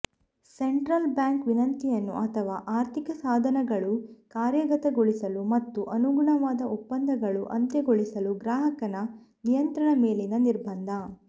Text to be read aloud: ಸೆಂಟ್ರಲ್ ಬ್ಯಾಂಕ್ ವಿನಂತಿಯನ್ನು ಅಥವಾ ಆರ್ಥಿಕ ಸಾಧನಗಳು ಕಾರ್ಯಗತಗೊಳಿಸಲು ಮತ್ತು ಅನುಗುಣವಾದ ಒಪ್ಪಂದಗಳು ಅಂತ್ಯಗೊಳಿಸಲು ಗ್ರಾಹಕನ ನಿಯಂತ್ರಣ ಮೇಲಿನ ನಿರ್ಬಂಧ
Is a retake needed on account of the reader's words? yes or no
no